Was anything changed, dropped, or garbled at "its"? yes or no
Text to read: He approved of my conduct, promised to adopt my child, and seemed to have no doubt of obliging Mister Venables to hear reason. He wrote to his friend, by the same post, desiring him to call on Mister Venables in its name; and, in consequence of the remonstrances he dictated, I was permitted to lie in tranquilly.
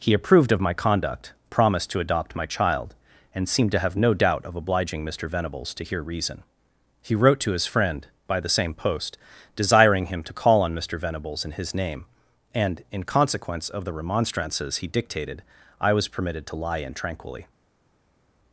yes